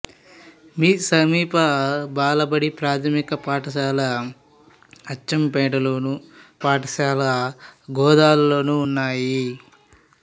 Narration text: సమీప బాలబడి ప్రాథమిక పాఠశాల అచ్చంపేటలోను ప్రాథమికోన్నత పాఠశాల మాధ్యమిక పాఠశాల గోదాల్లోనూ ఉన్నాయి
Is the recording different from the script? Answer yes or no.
yes